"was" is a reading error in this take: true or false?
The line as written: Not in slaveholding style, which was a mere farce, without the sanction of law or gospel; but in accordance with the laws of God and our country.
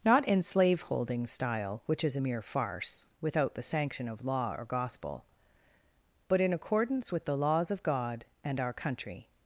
true